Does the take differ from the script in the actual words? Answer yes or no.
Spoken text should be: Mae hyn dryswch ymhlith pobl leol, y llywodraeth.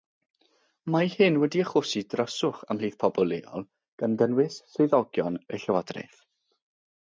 yes